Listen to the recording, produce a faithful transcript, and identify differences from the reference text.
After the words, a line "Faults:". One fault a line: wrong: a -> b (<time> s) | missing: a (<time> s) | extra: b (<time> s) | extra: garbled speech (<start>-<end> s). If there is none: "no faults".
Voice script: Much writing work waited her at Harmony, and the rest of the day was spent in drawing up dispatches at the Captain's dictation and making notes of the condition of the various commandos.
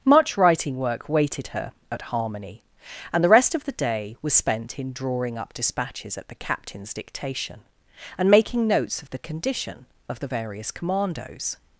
Much writing work waited her at Harmony, and the rest of the day was spent in drawing up dispatches at the Captain's dictation and making notes of the condition of the various commandos.
Faults:
no faults